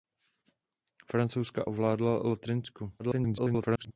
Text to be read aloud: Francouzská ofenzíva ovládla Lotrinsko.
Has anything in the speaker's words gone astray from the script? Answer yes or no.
yes